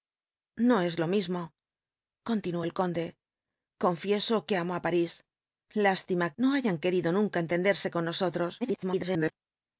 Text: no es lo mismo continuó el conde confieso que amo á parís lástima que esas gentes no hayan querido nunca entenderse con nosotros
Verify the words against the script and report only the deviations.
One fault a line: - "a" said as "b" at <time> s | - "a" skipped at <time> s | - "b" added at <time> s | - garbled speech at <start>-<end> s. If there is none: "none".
- "que esas gentes" skipped at 6.3 s
- garbled speech at 8.6-9.3 s